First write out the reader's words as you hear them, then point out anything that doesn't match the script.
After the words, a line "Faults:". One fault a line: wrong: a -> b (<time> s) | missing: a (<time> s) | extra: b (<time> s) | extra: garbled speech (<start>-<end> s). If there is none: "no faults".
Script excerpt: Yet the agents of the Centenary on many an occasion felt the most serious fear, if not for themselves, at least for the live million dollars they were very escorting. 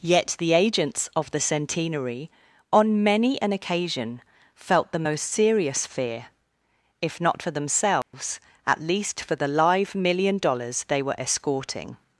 Yet the agents of the Centenary on many an occasion felt the most serious fear, if not for themselves, at least for the live million dollars they were escorting.
Faults:
missing: very (11.2 s)